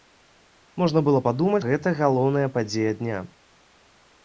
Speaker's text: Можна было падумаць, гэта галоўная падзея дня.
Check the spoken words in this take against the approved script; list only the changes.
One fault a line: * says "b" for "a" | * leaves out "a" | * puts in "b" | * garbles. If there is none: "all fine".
all fine